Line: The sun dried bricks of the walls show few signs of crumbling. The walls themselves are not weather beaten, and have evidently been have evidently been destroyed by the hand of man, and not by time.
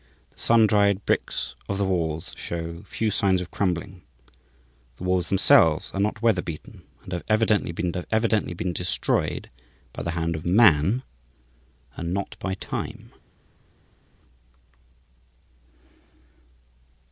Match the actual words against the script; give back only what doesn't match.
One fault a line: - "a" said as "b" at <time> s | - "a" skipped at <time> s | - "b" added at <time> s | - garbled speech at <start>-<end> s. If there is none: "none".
none